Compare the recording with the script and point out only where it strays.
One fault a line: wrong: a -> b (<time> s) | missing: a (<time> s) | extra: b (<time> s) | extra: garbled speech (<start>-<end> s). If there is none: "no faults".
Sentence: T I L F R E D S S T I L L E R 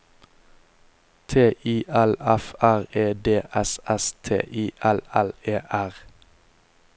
no faults